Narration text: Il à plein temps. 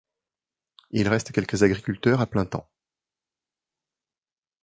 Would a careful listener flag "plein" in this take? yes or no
no